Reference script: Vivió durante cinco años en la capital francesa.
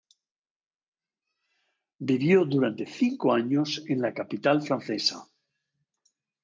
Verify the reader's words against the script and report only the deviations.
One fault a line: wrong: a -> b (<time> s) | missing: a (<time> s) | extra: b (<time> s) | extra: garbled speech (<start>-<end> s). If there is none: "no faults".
no faults